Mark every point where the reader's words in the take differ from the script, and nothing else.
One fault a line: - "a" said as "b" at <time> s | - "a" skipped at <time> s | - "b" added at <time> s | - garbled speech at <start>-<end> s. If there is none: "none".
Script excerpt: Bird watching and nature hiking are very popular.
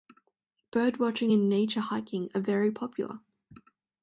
none